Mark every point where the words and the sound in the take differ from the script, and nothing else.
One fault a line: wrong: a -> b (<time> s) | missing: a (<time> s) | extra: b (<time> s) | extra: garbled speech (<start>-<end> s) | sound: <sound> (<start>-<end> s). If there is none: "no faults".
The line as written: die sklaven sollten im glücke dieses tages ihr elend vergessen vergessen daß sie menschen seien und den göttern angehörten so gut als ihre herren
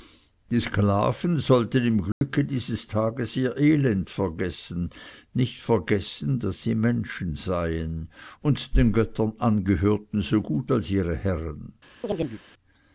sound: dropout (2.1-2.2 s)
extra: nicht (5.3 s)
sound: chirp (12.0-12.4 s)